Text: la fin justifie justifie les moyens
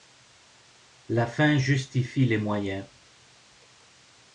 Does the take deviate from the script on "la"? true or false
false